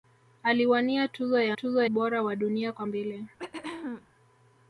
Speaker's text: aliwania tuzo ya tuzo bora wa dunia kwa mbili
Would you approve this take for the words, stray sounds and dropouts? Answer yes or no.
no